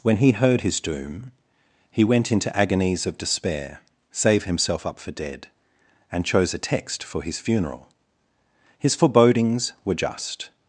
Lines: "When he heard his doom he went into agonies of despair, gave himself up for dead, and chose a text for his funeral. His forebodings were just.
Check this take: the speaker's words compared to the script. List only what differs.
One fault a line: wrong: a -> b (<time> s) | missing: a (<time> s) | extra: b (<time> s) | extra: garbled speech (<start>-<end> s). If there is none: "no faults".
wrong: gave -> save (4.1 s)